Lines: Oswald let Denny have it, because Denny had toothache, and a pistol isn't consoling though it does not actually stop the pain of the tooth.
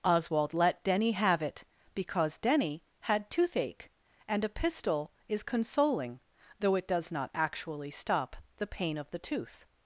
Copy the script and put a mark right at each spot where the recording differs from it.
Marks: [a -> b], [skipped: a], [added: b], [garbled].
Oswald let Denny have it, because Denny had toothache, and a pistol [isn't -> is] consoling though it does not actually stop the pain of the tooth.